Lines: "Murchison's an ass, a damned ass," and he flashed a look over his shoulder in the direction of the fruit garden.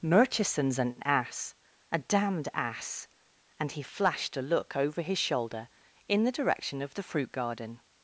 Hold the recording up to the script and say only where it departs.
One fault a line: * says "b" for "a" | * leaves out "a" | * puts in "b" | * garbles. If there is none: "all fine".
all fine